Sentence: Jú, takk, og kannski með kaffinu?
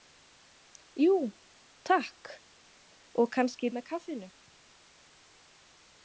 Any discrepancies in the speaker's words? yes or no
no